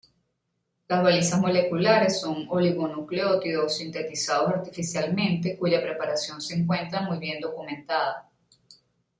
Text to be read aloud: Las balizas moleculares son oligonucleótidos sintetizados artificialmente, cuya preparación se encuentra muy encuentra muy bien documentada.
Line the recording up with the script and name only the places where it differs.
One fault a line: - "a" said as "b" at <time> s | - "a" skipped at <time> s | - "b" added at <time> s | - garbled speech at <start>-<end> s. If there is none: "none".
- "encuentra muy" skipped at 7.2 s